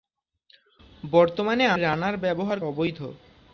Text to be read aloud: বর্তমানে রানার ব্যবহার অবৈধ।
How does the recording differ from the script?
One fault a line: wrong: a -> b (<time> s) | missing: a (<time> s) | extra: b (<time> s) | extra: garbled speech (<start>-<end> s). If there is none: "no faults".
no faults